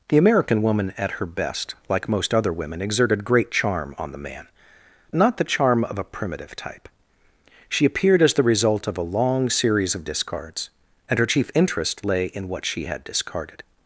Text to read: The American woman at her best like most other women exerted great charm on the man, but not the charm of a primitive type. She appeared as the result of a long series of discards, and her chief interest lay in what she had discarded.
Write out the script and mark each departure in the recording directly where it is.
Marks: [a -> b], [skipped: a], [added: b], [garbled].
The American woman at her best like most other women exerted great charm on the man, [skipped: but] not the charm of a primitive type. She appeared as the result of a long series of discards, and her chief interest lay in what she had discarded.